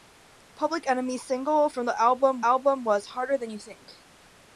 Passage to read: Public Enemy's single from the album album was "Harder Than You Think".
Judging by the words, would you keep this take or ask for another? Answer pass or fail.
pass